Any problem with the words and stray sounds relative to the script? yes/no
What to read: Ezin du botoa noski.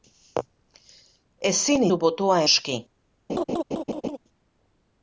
yes